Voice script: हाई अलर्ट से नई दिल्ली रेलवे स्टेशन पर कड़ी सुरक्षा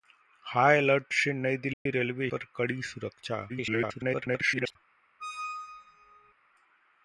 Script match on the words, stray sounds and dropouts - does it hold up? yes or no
no